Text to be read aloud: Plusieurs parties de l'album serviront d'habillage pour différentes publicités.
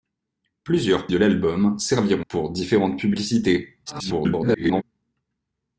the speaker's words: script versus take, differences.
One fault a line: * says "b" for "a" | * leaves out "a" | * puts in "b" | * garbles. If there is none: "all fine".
* leaves out "parties"
* leaves out "d'habillage"
* garbles